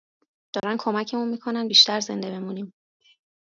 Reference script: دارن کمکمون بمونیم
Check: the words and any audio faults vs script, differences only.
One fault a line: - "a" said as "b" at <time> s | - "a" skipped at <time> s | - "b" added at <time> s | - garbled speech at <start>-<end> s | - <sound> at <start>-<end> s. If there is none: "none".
- dropout at 0.6-0.6 s
- "میکنن بیشتر زنده" added at 1.3 s